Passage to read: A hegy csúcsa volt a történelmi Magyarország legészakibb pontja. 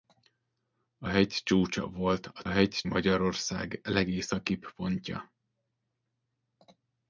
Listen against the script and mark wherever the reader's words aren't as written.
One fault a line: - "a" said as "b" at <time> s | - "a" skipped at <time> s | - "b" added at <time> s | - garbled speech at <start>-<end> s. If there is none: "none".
- "történelmi" said as "hegy" at 2.5 s